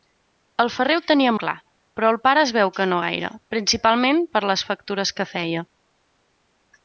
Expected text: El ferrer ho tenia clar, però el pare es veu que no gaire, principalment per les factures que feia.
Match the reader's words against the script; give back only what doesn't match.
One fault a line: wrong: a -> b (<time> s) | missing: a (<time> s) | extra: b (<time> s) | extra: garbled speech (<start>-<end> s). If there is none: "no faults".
no faults